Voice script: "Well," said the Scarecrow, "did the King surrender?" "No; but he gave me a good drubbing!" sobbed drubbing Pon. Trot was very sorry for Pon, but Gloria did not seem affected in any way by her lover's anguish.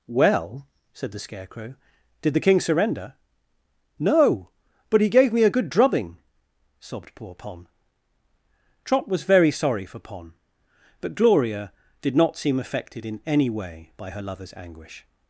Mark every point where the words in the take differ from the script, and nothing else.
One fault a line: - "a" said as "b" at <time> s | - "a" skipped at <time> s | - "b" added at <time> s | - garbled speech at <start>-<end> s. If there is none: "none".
- "drubbing" said as "poor" at 7.1 s